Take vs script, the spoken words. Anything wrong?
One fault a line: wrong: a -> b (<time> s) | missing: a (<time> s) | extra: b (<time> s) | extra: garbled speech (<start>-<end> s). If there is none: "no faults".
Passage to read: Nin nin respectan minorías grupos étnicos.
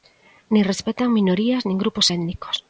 missing: nin (0.6 s)
extra: nin (1.6 s)